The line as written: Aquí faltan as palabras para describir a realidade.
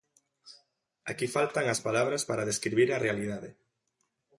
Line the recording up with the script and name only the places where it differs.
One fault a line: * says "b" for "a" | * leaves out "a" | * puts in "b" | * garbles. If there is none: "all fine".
all fine